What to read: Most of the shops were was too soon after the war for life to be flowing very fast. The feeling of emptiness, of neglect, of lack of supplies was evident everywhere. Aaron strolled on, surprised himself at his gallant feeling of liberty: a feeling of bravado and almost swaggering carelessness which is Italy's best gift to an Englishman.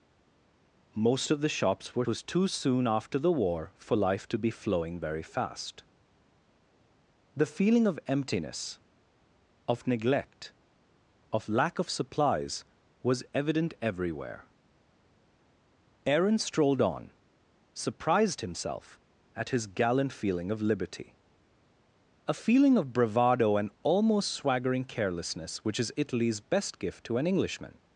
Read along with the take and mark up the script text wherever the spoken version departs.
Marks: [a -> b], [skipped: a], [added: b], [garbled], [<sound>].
Most of the shops were was too soon after the war for life to be flowing very fast. The feeling of emptiness, of neglect, of lack of supplies was evident everywhere. Aaron strolled on, surprised himself at his gallant feeling of liberty: a feeling of bravado and almost swaggering carelessness which is Italy's best gift to an Englishman.